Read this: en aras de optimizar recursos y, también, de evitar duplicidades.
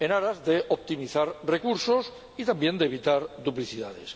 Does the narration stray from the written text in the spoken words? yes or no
no